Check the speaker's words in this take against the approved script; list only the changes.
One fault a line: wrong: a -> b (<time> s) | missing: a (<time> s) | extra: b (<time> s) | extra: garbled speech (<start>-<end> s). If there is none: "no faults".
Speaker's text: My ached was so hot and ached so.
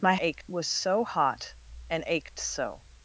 no faults